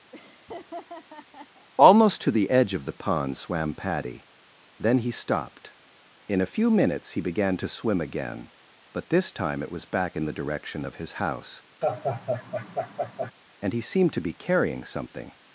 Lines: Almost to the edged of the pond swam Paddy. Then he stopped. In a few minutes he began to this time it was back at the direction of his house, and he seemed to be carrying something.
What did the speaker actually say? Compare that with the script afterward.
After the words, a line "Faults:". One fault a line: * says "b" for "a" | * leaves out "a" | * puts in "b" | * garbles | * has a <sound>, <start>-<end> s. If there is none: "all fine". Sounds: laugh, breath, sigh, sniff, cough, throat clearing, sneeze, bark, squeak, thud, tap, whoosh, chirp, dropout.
Almost to the edge of the pond swam Paddy. Then he stopped. In a few minutes he began to swim again, but this time it was back in the direction of his house, and he seemed to be carrying something.
Faults:
* has a laugh, 0.1-1.7 s
* says "edge" for "edged"
* puts in "swim again but"
* says "in" for "at"
* has a laugh, 11.8-13.3 s